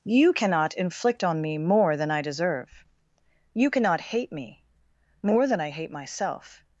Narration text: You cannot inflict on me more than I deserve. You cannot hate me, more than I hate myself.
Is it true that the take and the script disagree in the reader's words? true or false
false